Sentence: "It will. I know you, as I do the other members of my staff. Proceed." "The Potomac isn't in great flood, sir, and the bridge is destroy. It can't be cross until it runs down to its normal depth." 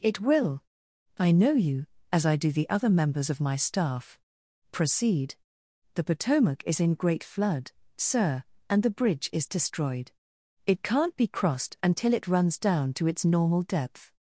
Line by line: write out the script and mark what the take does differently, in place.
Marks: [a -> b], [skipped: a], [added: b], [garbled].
"It will. I know you, as I do the other members of my staff. Proceed." "The Potomac [isn't -> is] in great flood, sir, and the bridge is [destroy. -> destroyed] It can't be [cross -> crossed] until it runs down to its normal depth."